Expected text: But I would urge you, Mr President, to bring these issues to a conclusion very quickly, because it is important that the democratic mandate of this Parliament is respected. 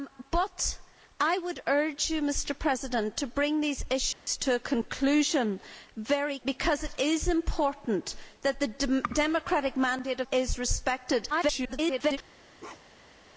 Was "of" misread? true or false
true